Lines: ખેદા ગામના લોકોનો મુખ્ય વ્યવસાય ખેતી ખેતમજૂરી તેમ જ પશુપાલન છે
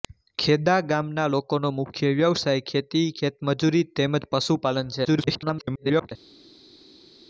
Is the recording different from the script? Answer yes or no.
yes